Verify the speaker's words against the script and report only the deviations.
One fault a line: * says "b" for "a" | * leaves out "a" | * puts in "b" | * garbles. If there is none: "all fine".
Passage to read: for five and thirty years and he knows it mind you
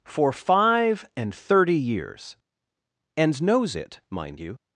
* leaves out "he"